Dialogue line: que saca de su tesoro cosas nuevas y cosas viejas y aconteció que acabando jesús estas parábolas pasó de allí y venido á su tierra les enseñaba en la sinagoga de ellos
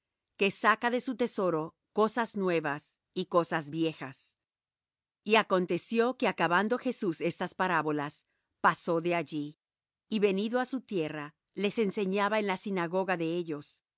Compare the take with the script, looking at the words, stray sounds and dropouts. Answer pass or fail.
pass